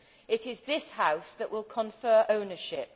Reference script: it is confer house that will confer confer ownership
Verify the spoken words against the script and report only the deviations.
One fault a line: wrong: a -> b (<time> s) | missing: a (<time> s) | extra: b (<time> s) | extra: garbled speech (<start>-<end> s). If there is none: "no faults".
wrong: confer -> this (0.6 s)
missing: confer (2.2 s)